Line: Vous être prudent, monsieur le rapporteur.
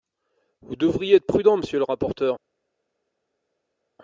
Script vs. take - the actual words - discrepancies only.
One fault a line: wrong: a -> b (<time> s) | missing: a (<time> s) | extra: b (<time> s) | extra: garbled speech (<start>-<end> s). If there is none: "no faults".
extra: devriez (0.8 s)